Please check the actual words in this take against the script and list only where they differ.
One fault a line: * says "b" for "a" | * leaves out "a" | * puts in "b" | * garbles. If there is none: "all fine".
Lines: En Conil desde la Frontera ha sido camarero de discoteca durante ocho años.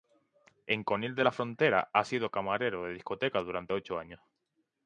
* says "de" for "desde"